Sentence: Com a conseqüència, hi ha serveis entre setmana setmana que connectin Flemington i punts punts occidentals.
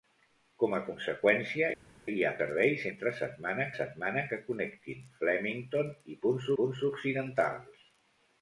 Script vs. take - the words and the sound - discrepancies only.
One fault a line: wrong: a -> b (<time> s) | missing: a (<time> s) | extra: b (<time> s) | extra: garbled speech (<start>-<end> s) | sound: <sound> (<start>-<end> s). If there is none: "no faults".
no faults